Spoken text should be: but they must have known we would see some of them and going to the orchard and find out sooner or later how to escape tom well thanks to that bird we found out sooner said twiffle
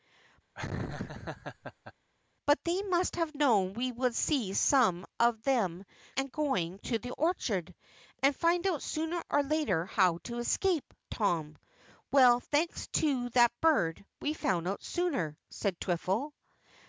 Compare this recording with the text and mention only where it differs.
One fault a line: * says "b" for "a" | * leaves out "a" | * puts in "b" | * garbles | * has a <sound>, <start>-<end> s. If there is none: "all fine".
* has a laugh, 0.6-1.9 s